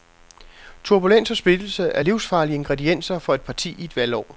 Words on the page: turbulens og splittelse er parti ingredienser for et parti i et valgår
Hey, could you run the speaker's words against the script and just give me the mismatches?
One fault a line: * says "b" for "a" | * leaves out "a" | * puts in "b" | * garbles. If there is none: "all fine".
* says "livsfarlige" for "parti"